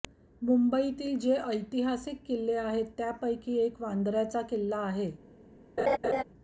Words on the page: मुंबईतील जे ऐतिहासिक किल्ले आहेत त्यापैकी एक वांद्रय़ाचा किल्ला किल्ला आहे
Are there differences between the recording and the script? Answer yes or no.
yes